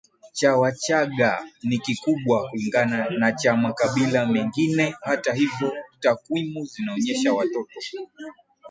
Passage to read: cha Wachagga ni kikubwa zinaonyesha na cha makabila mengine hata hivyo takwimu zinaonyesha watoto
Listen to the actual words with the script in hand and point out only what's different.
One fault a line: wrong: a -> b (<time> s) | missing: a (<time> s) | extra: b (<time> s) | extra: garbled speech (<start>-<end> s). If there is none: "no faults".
wrong: zinaonyesha -> kulingana (2.5 s)